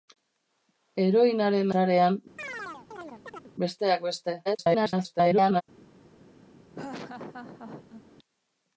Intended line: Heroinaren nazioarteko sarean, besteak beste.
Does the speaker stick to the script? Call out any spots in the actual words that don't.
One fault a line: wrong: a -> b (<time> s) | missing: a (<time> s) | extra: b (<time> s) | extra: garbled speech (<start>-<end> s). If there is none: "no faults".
missing: nazioarteko (1.7 s)
extra: garbled speech (4.5-5.6 s)